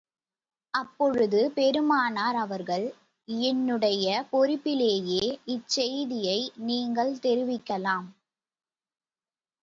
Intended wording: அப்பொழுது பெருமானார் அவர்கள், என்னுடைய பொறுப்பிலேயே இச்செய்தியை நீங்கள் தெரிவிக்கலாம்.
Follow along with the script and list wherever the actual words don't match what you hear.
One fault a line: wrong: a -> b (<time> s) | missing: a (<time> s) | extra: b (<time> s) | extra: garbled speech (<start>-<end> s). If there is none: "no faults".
no faults